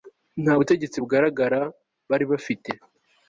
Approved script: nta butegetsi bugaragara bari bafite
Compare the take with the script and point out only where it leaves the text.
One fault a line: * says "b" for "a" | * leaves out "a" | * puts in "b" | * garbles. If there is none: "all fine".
all fine